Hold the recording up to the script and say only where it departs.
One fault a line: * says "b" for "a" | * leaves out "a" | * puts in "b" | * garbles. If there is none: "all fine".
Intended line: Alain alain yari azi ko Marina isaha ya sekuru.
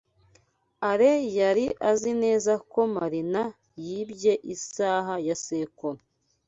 * leaves out "alain"
* puts in "neza"
* puts in "yibye"